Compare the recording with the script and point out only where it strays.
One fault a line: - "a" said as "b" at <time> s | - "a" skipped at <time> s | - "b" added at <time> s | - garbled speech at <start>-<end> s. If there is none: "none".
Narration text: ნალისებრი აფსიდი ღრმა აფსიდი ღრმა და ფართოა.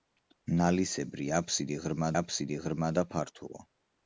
none